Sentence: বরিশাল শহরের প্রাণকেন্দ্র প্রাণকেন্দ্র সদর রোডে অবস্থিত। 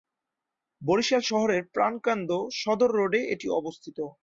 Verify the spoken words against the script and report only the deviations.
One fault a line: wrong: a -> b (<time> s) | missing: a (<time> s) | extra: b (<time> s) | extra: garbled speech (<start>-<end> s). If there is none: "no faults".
missing: প্রাণকেন্দ্র (2.3 s)
extra: এটি (3.3 s)